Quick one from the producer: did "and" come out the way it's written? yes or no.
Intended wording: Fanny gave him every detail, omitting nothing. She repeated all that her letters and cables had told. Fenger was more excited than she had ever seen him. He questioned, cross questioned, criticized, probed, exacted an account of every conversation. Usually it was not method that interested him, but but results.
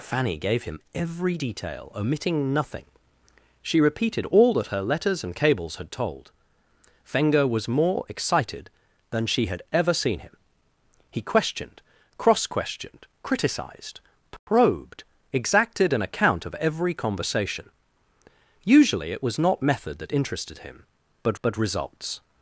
yes